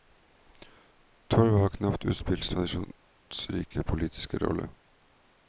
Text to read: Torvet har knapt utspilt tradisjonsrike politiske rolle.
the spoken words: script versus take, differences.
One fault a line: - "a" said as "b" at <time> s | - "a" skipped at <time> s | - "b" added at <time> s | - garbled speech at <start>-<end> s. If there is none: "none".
none